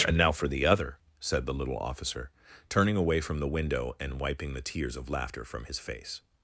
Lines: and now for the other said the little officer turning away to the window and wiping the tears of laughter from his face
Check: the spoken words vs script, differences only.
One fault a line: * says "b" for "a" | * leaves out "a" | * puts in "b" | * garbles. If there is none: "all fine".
* says "from" for "to"